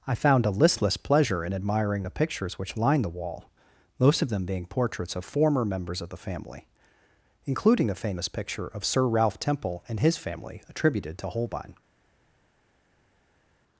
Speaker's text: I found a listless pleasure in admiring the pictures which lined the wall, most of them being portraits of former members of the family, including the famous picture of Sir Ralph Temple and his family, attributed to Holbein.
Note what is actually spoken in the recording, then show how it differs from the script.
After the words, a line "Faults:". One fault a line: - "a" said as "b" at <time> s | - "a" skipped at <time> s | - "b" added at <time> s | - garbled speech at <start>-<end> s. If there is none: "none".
I found a listless pleasure in admiring the pictures which lined the wall, most of them being portraits of former members of the family, including the famous picture of Sir Ralph Temple and his family, attributed to Holbein.
Faults:
none